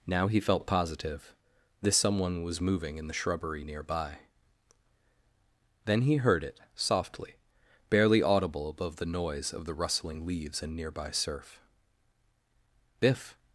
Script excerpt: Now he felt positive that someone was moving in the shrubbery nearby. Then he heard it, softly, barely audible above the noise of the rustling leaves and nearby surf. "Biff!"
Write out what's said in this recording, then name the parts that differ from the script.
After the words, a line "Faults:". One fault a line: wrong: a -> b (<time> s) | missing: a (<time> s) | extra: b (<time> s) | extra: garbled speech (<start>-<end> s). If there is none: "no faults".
Now he felt positive this someone was moving in the shrubbery nearby. Then he heard it, softly, barely audible above the noise of the rustling leaves and nearby surf. "Biff!"
Faults:
wrong: that -> this (1.8 s)